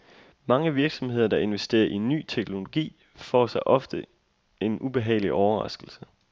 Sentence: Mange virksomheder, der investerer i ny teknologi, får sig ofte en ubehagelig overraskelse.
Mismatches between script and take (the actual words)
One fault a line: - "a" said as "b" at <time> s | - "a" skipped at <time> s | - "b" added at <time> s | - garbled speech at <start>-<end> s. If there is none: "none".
none